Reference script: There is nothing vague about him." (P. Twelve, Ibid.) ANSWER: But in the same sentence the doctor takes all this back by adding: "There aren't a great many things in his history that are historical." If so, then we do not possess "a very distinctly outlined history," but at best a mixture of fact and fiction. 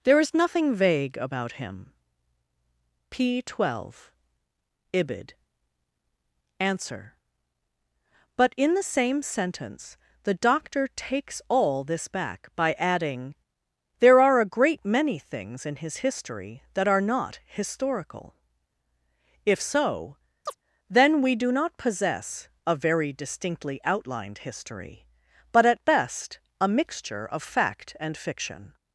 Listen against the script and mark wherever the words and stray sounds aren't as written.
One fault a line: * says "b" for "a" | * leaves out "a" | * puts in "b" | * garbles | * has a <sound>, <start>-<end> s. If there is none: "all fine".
* says "are" for "aren't"
* puts in "not"
* has a chirp, 20.5-20.6 s